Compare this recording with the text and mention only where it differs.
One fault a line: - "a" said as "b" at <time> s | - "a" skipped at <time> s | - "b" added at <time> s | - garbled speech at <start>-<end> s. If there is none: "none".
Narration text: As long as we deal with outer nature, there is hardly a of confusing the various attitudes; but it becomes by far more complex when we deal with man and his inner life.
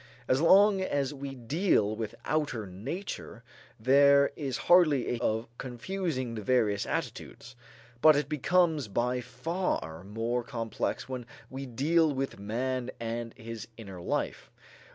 none